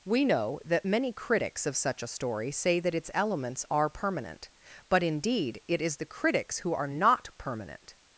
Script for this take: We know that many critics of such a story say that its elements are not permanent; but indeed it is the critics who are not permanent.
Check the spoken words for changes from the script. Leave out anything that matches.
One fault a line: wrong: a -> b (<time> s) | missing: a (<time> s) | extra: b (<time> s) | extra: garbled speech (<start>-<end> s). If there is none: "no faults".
missing: not (3.9 s)